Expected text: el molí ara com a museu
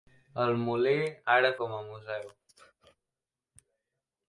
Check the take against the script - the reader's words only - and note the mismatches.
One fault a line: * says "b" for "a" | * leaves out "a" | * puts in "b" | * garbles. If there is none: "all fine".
all fine